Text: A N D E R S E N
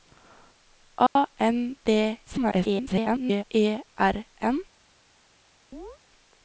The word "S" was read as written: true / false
false